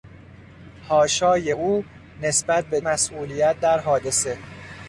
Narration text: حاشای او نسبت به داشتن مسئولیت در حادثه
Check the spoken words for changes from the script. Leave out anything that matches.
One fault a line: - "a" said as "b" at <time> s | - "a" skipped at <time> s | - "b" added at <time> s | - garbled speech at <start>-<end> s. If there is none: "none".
- "داشتن" skipped at 2.8 s